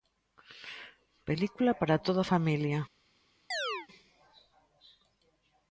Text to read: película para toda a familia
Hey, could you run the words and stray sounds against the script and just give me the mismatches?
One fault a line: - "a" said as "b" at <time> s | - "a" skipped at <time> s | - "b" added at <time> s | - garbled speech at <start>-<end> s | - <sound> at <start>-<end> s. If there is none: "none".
- chirp at 3.5-3.9 s